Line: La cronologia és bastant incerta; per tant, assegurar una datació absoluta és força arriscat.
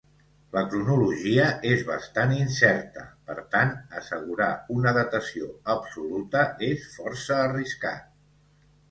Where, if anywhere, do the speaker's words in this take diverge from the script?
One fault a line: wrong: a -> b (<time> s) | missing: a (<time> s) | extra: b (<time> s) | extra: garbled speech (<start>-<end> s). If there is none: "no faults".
no faults